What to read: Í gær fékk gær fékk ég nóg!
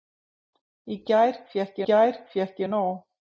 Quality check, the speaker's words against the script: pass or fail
pass